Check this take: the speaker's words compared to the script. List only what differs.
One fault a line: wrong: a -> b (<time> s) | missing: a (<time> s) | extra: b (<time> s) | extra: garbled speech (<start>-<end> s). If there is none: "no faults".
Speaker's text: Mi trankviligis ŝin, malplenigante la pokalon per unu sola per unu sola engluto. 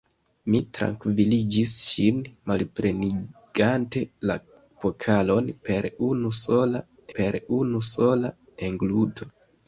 no faults